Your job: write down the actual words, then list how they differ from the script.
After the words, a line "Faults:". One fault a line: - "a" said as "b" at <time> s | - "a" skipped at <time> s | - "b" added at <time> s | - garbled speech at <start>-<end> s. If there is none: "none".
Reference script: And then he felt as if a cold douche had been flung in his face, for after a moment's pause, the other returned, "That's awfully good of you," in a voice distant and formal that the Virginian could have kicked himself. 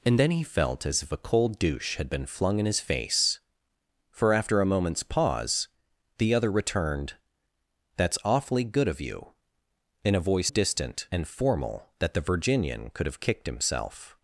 And then he felt as if a cold douche had been flung in his face, for after a moment's pause, the other returned, "That's awfully good of you," in a voice distant and formal that the Virginian could have kicked himself.
Faults:
none